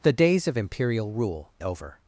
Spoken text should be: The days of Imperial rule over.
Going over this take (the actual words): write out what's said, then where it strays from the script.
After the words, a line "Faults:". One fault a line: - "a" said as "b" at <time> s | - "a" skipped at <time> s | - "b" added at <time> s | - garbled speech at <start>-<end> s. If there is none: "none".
The days of Imperial rule over.
Faults:
none